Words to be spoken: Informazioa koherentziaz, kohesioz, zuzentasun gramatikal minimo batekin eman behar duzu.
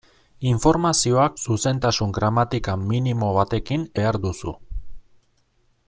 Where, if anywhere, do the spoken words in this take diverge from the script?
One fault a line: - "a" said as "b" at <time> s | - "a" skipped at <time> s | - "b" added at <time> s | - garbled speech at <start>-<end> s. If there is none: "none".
- "koherentziaz kohesioz" skipped at 1.2 s
- "eman" skipped at 3.9 s